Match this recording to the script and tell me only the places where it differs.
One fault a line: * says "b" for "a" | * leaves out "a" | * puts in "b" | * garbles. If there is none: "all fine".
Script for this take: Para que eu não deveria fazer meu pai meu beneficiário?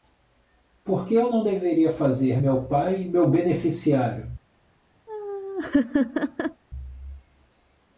* says "Por" for "Para"